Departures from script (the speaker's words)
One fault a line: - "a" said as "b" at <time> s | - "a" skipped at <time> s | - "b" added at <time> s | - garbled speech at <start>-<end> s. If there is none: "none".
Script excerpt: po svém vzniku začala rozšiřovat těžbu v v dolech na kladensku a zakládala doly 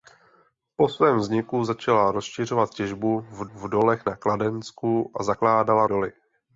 none